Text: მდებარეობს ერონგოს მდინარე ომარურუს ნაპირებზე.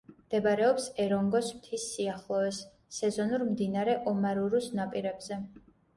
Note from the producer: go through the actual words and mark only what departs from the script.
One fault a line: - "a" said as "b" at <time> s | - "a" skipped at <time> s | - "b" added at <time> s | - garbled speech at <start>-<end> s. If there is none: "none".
- "მთის სიახლოვეს სეზონურ" added at 1.6 s